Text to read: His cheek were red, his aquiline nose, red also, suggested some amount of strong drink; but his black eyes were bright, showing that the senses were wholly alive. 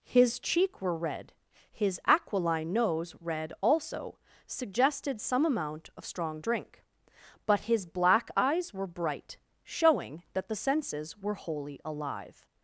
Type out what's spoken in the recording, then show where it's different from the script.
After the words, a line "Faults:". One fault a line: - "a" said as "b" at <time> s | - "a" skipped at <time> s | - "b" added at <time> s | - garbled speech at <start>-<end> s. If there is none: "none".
His cheek were red, his aquiline nose, red also, suggested some amount of strong drink; but his black eyes were bright, showing that the senses were wholly alive.
Faults:
none